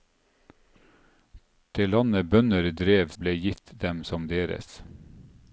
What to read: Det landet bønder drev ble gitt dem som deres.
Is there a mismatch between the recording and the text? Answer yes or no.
no